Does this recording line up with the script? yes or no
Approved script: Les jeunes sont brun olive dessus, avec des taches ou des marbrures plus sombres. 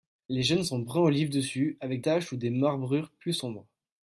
no